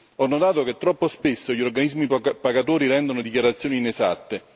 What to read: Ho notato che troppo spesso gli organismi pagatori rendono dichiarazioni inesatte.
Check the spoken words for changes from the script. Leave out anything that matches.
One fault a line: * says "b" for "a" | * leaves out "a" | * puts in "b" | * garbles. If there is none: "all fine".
all fine